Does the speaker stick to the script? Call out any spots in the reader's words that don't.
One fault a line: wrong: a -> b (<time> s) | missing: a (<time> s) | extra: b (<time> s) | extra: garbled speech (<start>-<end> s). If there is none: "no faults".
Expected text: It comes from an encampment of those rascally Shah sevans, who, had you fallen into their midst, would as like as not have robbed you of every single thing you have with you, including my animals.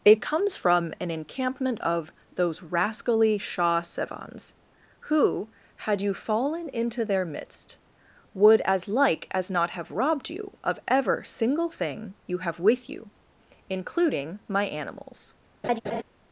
wrong: every -> ever (10.9 s)